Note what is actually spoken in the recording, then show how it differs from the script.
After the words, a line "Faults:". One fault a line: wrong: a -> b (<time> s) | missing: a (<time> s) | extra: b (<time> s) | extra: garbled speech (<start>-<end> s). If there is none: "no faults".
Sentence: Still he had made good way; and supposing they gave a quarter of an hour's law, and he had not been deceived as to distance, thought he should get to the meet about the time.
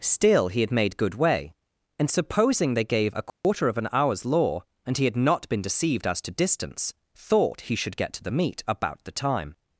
Still he had made good way; and supposing they gave a quarter of an hour's law, and he had not been deceived as to distance, thought he should get to the meet about the time.
Faults:
no faults